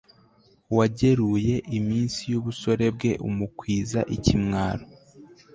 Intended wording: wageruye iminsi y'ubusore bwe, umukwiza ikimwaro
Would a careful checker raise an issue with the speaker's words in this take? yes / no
no